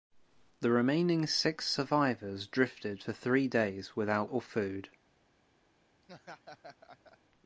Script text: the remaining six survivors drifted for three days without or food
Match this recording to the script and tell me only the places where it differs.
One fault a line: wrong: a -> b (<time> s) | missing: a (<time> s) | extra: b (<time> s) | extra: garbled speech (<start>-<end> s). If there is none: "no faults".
no faults